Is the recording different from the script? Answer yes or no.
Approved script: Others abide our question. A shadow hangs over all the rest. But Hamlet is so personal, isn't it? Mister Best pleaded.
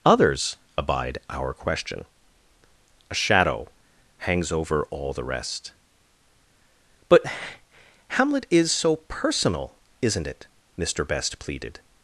no